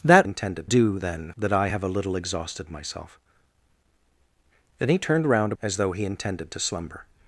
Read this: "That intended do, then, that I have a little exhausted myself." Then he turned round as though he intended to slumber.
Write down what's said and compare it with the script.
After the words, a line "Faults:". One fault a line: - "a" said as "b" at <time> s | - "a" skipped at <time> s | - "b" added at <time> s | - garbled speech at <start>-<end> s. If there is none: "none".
"That intended do, then, that I have a little exhausted myself." Then he turned round as though he intended to slumber.
Faults:
none